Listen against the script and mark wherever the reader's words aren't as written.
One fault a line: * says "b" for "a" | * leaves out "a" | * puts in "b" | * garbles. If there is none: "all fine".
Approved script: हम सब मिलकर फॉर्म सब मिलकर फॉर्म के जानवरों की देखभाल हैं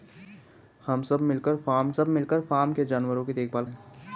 all fine